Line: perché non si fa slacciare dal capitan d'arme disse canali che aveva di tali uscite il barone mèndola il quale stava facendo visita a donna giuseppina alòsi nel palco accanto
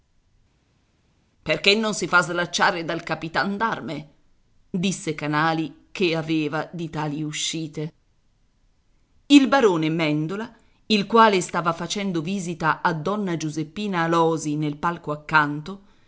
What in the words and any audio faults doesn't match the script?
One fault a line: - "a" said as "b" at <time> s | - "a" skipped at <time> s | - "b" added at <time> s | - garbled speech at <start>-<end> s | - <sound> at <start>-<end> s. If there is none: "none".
none